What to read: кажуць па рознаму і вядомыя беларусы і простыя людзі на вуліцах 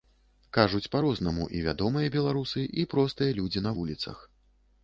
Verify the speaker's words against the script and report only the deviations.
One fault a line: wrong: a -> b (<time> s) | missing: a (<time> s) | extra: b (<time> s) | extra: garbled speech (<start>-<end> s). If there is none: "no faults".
no faults